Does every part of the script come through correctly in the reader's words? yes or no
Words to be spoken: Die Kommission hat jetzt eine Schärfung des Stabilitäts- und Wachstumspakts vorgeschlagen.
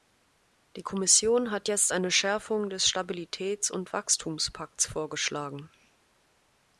yes